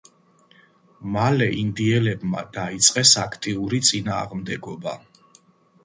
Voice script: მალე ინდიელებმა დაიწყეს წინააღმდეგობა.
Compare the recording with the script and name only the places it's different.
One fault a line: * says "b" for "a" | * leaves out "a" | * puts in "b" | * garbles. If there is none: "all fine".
* puts in "აქტიური"